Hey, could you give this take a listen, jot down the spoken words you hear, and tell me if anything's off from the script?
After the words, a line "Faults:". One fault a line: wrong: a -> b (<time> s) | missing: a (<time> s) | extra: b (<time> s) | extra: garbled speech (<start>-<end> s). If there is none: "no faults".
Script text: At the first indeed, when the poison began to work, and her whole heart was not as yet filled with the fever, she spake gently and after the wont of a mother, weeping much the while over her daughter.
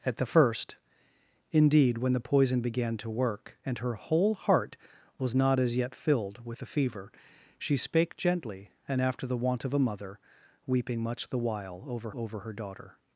At the first indeed, when the poison began to work, and her whole heart was not as yet filled with the fever, she spake gently and after the wont of a mother, weeping much the while over over her daughter.
Faults:
extra: over (12.1 s)